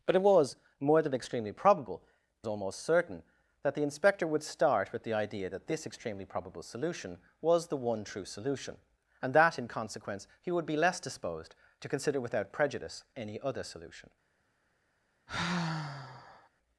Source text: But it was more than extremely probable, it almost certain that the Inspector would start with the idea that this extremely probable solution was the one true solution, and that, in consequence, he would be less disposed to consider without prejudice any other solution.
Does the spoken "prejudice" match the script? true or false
true